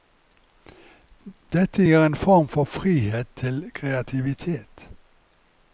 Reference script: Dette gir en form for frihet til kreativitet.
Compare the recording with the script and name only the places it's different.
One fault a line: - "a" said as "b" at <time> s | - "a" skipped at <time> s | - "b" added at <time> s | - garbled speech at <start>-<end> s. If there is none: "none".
none